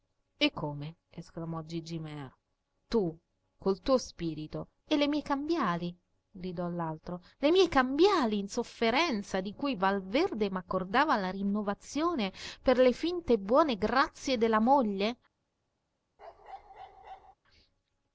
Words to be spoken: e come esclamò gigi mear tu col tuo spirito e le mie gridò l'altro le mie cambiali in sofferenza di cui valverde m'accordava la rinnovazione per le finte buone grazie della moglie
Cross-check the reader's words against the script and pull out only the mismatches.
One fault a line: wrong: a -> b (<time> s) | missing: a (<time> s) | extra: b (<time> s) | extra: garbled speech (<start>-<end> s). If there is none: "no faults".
extra: cambiali (5.2 s)